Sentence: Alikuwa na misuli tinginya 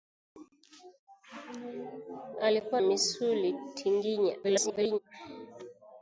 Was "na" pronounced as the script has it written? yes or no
no